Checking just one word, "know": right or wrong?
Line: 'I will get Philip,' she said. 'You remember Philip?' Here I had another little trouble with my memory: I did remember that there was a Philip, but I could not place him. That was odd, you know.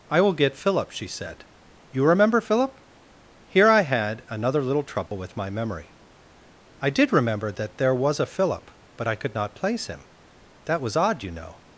right